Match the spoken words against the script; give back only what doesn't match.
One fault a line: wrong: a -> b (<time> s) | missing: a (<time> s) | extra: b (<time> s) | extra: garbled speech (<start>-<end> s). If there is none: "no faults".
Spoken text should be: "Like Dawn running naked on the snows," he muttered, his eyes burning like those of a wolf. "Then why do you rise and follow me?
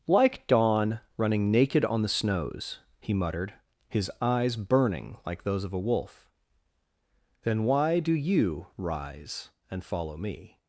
no faults